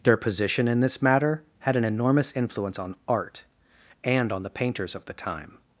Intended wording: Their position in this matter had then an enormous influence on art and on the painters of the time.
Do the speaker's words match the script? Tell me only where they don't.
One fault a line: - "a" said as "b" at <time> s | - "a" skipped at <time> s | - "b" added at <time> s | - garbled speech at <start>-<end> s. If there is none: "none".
- "then" skipped at 1.8 s